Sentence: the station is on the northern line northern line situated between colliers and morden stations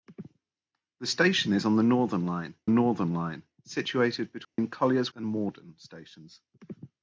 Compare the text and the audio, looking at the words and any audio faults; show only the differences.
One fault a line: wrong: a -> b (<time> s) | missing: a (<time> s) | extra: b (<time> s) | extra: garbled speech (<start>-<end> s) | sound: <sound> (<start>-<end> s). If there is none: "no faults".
sound: dropout (4.4-4.6 s)